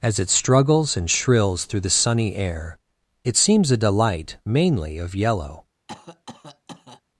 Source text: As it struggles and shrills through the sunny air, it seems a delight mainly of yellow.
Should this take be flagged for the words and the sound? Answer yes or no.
yes